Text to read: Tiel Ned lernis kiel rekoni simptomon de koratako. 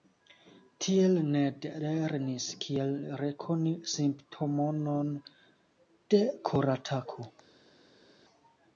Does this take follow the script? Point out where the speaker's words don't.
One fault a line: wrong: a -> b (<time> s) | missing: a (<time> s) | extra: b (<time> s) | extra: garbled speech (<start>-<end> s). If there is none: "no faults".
no faults